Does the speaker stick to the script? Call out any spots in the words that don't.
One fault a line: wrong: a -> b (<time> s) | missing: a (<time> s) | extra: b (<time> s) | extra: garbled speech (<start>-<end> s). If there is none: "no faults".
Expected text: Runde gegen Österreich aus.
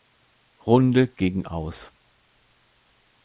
missing: Österreich (1.4 s)